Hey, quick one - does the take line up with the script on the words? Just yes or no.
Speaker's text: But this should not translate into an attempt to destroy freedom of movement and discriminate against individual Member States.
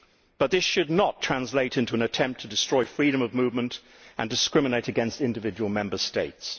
yes